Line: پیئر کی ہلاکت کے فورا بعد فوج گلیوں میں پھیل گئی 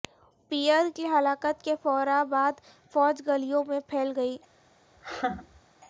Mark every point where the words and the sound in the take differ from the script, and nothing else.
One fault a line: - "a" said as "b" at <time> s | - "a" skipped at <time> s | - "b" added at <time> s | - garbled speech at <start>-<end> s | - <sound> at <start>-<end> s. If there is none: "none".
- laugh at 5.0-5.6 s